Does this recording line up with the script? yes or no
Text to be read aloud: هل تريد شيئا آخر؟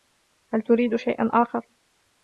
yes